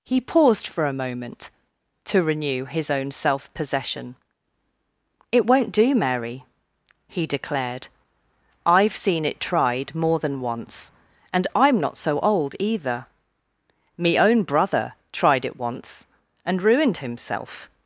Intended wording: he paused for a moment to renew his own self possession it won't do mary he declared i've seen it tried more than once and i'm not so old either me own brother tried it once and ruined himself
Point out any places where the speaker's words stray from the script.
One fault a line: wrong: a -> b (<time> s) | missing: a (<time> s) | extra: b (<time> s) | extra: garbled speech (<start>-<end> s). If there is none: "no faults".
no faults